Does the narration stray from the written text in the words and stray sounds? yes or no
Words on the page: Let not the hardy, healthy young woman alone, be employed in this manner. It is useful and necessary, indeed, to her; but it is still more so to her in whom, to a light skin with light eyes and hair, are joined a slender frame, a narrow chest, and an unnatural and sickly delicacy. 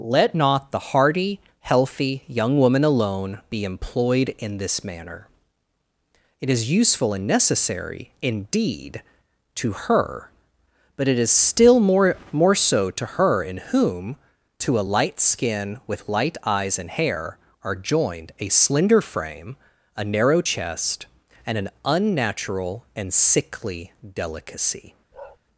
yes